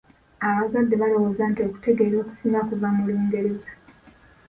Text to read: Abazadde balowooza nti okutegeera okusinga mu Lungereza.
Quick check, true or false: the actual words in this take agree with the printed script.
false